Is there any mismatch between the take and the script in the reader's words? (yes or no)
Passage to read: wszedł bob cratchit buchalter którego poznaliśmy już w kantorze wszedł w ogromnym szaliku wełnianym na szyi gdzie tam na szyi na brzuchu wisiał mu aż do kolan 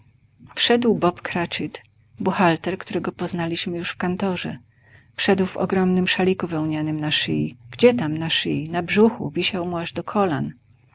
no